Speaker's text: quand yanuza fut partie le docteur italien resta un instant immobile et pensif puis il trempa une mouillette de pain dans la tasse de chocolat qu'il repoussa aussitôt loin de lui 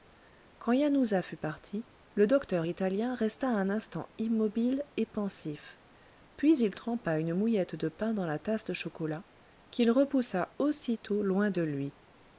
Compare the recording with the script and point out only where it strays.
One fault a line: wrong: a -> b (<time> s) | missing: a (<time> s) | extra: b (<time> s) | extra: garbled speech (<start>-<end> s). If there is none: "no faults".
no faults